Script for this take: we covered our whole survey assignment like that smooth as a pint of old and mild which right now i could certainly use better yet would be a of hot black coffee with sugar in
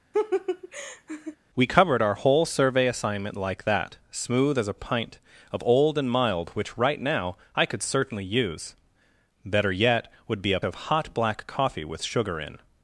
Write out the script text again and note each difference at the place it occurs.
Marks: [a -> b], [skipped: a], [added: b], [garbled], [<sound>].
[laugh] we covered our whole survey assignment like that smooth as a pint of old and mild which right now i could certainly use better yet would be a of hot black coffee with sugar in